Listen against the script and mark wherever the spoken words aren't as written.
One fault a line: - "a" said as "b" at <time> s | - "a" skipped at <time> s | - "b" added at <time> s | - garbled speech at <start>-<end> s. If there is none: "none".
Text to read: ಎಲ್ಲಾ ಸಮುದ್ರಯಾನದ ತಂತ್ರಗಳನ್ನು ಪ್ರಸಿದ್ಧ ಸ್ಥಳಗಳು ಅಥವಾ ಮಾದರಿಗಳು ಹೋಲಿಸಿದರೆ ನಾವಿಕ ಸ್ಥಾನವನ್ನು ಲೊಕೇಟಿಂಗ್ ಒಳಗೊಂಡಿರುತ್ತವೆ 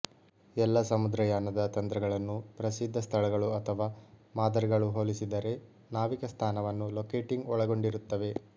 none